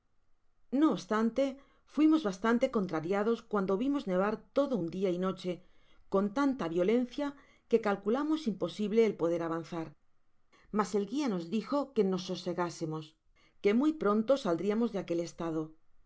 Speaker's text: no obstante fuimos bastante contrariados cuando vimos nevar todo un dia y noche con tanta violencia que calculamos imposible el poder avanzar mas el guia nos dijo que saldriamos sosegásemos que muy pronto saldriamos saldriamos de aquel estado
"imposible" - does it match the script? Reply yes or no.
yes